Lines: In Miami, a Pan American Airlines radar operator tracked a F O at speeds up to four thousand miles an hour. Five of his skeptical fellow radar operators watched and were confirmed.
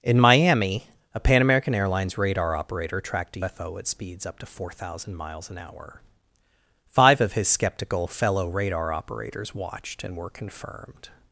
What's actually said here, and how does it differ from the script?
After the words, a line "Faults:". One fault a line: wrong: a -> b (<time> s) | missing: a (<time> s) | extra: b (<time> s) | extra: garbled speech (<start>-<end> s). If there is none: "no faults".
In Miami, a Pan American Airlines radar operator tracked a F O at speeds up to four thousand miles an hour. Five of his skeptical fellow radar operators watched and were confirmed.
Faults:
no faults